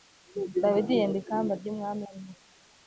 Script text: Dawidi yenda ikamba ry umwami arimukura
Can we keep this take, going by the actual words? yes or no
yes